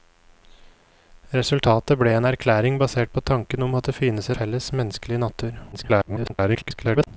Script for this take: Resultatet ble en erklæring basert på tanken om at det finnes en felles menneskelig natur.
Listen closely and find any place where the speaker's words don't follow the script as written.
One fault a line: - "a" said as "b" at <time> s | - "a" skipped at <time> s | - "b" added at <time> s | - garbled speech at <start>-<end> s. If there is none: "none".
- "en" skipped at 4.3 s
- garbled speech at 5.7-7.1 s